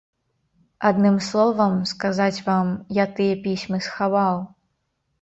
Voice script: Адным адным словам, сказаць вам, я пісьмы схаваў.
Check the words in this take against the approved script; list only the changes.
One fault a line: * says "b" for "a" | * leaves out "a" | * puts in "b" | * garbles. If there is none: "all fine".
* leaves out "адным"
* puts in "тыя"